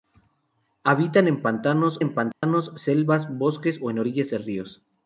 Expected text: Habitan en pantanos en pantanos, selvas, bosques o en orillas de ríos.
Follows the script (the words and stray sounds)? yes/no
no